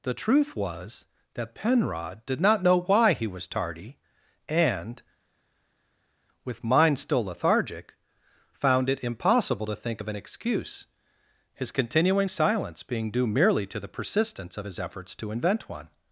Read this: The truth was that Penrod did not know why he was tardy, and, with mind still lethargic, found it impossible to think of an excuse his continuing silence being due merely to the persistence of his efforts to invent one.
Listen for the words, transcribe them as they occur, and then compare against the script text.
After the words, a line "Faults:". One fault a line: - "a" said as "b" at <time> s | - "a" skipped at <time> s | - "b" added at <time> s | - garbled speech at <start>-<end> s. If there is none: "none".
The truth was that Penrod did not know why he was tardy, and, with mind still lethargic, found it impossible to think of an excuse his continuing silence being due merely to the persistence of his efforts to invent one.
Faults:
none